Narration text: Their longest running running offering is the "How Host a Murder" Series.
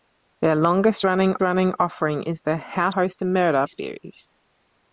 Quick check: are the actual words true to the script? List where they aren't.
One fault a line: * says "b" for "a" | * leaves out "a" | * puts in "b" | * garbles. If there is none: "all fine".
all fine